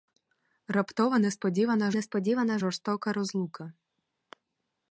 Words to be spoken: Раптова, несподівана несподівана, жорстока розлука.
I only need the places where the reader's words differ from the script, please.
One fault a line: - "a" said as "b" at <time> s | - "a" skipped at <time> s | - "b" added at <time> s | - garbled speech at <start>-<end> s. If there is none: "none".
none